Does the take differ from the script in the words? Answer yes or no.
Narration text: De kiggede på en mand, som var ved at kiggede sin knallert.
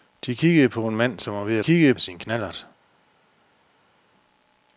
no